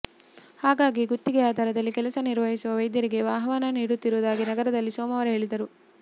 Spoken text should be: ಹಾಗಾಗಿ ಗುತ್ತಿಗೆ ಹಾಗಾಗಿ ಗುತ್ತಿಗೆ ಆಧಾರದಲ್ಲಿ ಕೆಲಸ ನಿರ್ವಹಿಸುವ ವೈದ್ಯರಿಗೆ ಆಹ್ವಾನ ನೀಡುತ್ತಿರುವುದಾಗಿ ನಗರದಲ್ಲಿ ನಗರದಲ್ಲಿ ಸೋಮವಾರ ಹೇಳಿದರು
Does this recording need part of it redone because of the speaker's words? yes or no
yes